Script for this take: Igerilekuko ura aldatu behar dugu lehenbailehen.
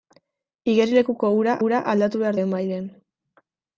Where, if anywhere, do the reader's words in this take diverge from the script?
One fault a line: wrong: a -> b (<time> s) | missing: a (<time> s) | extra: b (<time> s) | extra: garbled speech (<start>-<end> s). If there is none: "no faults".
extra: ura (1.7 s)
missing: dugu (2.4 s)